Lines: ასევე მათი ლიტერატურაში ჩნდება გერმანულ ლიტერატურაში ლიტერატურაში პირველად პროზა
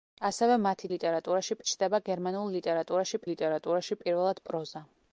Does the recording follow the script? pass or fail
pass